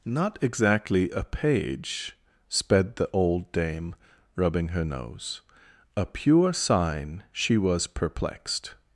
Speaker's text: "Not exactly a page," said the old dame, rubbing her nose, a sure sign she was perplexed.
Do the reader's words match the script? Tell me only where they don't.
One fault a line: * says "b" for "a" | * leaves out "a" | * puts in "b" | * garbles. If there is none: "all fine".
* says "sped" for "said"
* says "pure" for "sure"